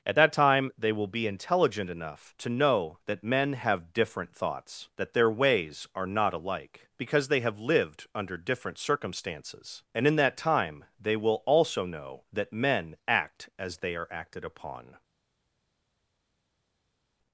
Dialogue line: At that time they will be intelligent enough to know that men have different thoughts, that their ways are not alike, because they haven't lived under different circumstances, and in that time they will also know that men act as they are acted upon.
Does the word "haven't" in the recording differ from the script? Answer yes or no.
yes